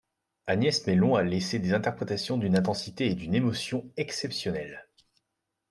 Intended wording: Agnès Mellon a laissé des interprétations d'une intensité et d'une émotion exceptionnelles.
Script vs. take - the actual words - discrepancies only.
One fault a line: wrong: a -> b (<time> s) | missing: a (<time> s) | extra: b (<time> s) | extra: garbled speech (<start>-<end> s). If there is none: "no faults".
no faults